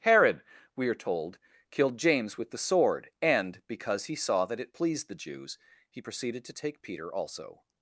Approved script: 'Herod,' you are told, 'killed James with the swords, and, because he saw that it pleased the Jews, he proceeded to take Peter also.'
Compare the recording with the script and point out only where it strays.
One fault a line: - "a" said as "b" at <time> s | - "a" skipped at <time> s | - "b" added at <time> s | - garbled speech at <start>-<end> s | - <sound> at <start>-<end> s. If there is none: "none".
- "you" said as "we" at 0.8 s
- "swords" said as "sword" at 2.6 s